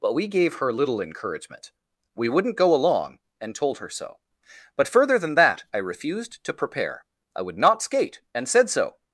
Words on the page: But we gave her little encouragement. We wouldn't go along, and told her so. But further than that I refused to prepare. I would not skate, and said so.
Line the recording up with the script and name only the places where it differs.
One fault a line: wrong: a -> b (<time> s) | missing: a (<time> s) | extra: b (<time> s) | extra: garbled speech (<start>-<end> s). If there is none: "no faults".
no faults